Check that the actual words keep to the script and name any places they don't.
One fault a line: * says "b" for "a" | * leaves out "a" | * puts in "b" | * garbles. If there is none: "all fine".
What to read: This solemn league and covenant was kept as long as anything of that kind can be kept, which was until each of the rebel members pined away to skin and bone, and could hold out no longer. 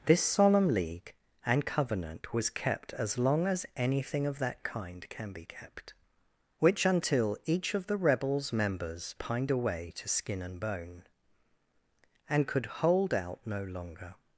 * leaves out "was"
* says "rebels" for "rebel"